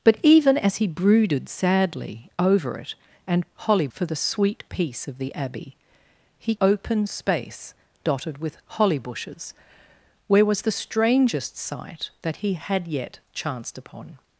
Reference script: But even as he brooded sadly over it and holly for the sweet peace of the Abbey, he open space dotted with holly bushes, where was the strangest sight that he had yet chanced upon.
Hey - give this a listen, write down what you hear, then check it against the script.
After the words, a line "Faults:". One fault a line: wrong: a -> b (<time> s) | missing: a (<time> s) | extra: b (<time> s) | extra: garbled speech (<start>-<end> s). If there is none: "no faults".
But even as he brooded sadly over it and holly for the sweet peace of the Abbey, he open space dotted with holly bushes, where was the strangest sight that he had yet chanced upon.
Faults:
no faults